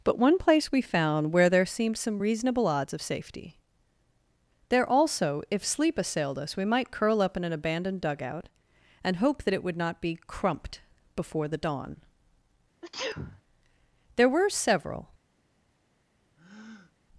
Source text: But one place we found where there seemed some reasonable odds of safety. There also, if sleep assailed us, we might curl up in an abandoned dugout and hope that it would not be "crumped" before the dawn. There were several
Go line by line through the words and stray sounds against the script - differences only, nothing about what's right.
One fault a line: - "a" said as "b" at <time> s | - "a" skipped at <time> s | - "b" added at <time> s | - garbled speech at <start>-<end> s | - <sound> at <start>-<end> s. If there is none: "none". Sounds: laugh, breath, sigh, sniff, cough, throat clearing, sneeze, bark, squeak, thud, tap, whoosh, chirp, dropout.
- sneeze at 12.8-13.4 s
- breath at 16.4-16.9 s